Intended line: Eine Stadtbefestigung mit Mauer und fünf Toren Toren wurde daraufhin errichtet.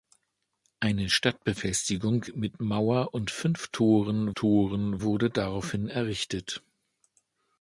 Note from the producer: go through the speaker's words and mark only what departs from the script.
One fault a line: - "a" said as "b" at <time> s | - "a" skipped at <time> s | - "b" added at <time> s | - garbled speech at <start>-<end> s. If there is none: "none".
none